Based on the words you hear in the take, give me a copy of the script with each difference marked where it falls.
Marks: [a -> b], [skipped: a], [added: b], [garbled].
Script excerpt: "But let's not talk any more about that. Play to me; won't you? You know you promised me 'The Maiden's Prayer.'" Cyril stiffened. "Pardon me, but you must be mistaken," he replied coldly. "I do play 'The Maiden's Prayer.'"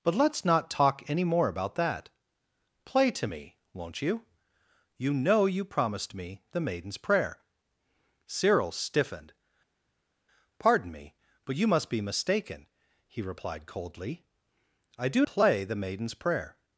"But let's not talk any more about that. Play to me; won't you? You know you promised me 'The Maiden's Prayer.'" Cyril stiffened. "Pardon me, but you must be mistaken," he replied coldly. "I do play 'The Maiden's Prayer.'"